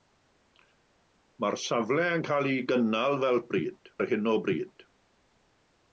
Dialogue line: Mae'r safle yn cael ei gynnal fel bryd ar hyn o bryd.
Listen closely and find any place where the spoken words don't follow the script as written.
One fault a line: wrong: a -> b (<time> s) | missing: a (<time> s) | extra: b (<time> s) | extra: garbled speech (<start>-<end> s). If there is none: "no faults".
no faults